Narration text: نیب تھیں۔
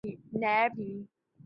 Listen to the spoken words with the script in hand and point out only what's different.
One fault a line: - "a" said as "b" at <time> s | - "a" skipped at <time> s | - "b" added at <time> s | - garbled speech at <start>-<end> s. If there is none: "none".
none